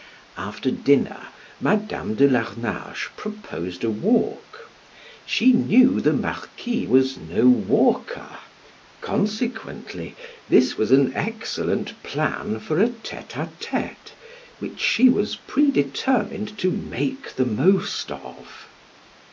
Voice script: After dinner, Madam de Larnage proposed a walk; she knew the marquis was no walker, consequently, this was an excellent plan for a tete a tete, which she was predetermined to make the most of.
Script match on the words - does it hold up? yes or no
yes